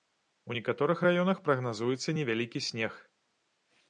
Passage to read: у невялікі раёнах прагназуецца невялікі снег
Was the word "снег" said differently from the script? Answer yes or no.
no